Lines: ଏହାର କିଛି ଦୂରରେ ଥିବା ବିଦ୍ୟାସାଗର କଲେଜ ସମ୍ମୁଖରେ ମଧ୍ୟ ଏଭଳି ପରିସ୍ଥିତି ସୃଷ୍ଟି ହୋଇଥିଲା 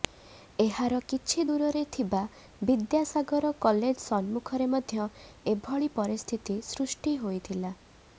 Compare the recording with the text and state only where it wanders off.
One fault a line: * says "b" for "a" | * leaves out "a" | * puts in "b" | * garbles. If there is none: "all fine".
all fine